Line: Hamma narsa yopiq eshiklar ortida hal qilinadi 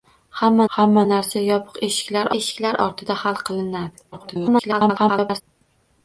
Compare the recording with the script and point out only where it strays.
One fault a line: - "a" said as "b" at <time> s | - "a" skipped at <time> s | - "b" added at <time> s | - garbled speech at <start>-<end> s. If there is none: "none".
- "hamma" added at 0.7 s
- "eshiklar" added at 2.4 s
- garbled speech at 4.1-5.4 s